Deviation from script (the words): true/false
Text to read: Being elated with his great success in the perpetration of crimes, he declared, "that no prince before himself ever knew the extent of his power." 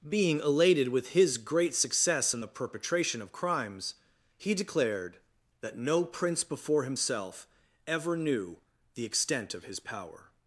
false